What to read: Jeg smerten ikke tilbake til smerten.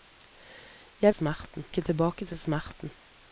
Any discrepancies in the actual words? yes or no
no